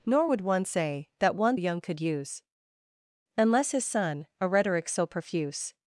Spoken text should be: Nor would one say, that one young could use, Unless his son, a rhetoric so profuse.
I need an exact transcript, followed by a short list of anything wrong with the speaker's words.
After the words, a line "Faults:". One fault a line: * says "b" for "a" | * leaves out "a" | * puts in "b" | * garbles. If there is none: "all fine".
Nor would one say, that one young could use, Unless his son, a rhetoric so profuse.
Faults:
all fine